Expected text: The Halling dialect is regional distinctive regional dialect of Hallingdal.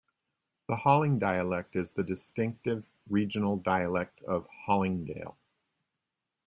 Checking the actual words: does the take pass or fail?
fail